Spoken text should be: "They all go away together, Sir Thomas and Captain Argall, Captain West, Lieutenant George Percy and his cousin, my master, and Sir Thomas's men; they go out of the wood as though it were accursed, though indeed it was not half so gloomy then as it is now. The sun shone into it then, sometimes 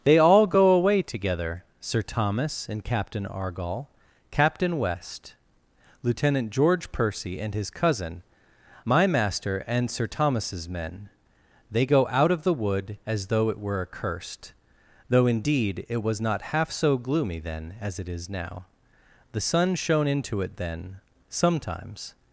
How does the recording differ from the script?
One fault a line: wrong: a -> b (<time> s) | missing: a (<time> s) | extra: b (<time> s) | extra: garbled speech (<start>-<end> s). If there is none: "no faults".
no faults